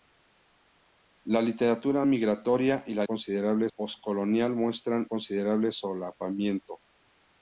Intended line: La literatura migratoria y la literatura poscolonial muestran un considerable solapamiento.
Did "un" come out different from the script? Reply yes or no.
yes